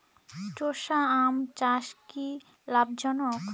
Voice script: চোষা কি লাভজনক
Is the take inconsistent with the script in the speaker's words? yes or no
yes